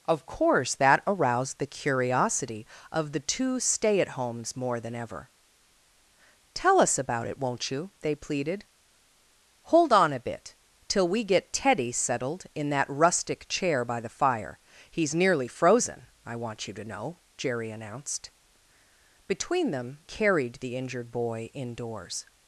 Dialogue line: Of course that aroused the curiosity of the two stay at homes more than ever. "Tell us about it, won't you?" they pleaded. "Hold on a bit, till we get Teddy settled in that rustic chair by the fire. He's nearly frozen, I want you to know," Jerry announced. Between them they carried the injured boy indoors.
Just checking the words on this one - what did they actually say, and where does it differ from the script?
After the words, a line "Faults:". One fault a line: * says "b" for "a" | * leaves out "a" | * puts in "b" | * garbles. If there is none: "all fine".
Of course that aroused the curiosity of the two stay at homes more than ever. "Tell us about it, won't you?" they pleaded. "Hold on a bit, till we get Teddy settled in that rustic chair by the fire. He's nearly frozen, I want you to know," Jerry announced. Between them carried the injured boy indoors.
Faults:
* leaves out "they"